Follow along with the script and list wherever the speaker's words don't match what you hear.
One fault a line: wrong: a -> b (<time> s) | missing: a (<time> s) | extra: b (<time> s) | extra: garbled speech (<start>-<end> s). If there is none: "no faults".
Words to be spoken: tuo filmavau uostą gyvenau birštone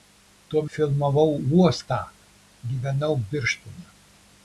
no faults